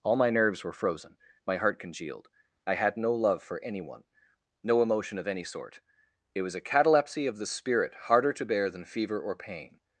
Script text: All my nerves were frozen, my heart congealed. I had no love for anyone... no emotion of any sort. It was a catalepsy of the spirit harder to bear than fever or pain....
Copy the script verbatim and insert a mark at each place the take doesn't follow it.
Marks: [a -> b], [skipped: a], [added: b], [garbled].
All my nerves were frozen, my heart congealed. I had no love for anyone... no emotion of any sort. It was a catalepsy of the spirit harder to bear than fever or pain....